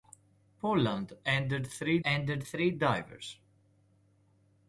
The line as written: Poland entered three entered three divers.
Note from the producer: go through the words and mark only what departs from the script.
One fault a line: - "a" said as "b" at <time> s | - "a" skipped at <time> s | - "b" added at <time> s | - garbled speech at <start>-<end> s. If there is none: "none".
none